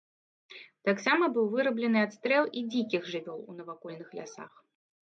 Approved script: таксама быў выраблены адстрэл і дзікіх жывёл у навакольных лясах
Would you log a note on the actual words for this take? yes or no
no